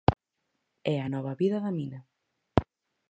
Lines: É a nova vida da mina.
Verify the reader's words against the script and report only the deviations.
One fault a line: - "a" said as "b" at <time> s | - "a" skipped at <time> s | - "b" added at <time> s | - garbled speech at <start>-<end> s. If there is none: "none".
none